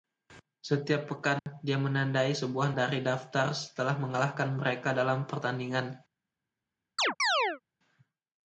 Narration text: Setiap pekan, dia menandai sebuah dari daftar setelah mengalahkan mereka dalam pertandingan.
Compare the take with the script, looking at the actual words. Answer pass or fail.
pass